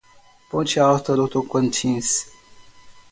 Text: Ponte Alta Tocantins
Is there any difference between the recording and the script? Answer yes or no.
yes